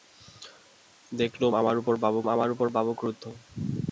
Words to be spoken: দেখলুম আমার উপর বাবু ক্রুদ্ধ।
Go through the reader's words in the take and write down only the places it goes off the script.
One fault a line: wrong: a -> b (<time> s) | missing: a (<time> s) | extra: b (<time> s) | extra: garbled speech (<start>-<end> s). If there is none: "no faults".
extra: আমার উপর বাবু (2.3 s)